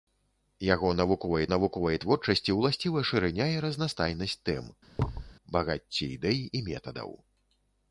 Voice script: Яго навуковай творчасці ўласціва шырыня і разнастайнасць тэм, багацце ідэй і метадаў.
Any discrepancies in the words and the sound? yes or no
yes